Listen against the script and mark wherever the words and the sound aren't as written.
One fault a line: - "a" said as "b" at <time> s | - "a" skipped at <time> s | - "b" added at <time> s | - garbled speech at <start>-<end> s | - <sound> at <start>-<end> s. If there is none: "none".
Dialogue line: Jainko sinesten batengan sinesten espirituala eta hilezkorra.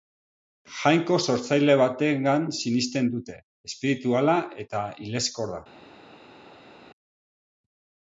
- "sinesten" said as "sortzaile" at 1.2 s
- "dute" added at 3.1 s